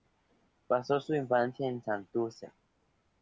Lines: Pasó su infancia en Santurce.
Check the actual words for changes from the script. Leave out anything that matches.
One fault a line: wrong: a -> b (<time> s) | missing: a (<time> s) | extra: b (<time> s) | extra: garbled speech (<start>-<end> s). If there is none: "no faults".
no faults